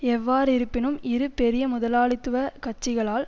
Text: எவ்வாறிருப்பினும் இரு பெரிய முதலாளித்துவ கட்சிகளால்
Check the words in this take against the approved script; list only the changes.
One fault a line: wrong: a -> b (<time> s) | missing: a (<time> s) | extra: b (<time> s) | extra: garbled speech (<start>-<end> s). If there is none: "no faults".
no faults